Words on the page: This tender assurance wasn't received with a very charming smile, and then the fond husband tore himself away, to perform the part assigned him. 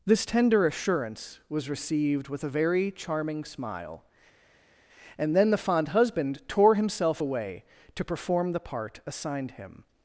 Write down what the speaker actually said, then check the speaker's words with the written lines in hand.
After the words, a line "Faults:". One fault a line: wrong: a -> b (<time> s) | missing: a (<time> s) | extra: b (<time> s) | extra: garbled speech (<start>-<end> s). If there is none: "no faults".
This tender assurance was received with a very charming smile, and then the fond husband tore himself away, to perform the part assigned him.
Faults:
wrong: wasn't -> was (1.5 s)